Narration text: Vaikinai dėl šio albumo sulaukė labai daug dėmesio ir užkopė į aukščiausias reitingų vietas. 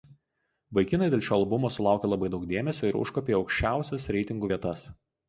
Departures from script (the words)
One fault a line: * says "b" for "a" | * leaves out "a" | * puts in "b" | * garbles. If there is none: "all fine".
all fine